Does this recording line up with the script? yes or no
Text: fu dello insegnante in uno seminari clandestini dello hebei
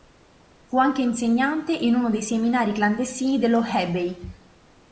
no